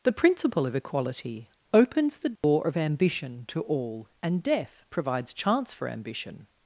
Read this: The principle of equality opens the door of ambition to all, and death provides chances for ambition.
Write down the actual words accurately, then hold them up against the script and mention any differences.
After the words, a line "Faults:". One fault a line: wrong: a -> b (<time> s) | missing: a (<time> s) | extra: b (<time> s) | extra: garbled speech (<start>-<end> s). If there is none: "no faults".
The principle of equality opens the door of ambition to all, and death provides chance for ambition.
Faults:
wrong: chances -> chance (5.3 s)